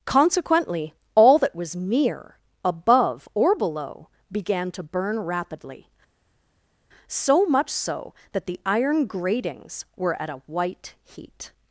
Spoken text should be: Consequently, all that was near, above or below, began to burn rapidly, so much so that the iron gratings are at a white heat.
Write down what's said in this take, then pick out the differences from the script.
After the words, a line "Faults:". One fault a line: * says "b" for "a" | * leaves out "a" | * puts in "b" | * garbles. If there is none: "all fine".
Consequently, all that was near, above or below, began to burn rapidly, so much so that the iron gratings were at a white heat.
Faults:
* says "were" for "are"